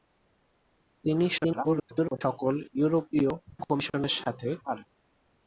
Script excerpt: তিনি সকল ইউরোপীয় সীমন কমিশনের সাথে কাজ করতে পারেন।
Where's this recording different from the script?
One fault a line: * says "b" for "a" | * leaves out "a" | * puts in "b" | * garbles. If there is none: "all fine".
* garbles
* leaves out "সীমন"
* leaves out "কাজ করতে"